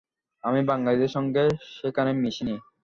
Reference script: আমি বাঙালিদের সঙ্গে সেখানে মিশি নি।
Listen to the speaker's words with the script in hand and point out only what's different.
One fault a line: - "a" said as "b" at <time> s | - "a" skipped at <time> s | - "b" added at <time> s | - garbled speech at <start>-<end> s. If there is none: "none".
none